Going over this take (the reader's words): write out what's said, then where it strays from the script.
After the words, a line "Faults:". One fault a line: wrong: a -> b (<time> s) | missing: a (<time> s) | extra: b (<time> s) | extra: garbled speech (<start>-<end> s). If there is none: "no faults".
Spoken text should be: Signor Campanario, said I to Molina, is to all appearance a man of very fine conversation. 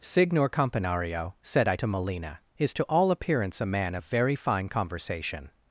Signor Campanario, said I to Molina, is to all appearance a man of very fine conversation.
Faults:
no faults